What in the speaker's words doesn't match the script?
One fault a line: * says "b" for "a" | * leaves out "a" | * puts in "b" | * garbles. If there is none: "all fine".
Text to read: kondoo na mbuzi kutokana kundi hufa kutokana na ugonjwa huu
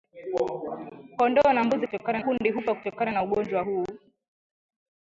all fine